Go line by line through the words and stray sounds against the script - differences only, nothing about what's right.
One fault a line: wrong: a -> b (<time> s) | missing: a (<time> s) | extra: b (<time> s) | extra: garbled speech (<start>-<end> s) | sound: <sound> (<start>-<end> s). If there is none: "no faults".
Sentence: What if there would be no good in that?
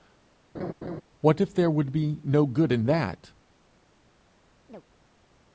sound: laugh (0.5-1.0 s)
sound: chirp (4.7-4.8 s)